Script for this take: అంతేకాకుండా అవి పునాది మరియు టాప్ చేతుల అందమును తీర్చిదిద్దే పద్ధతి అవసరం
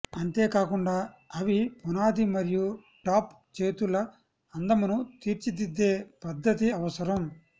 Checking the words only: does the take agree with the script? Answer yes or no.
yes